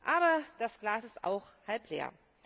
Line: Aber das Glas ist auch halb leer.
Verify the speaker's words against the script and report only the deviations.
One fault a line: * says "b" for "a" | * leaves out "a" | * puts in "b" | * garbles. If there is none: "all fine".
all fine